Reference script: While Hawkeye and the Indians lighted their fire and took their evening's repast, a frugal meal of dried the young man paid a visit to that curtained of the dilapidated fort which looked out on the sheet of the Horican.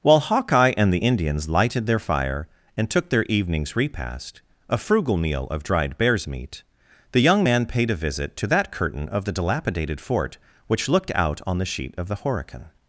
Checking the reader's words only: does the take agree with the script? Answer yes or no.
no